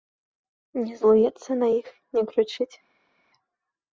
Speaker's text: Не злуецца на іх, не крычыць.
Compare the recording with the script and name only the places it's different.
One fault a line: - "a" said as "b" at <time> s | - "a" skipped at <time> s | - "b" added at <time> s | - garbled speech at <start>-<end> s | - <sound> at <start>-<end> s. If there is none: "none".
none